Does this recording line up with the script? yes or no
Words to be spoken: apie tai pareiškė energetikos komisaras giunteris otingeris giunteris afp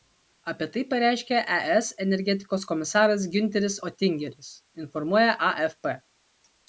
no